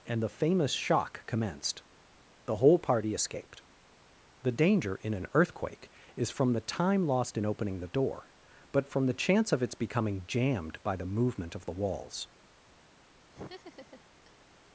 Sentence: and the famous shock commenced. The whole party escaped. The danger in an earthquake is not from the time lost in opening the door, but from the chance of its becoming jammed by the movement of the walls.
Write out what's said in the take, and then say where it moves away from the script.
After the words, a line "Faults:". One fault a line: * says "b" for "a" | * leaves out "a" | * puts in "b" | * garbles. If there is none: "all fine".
and the famous shock commenced. The whole party escaped. The danger in an earthquake is from the time lost in opening the door, but from the chance of its becoming jammed by the movement of the walls.
Faults:
* leaves out "not"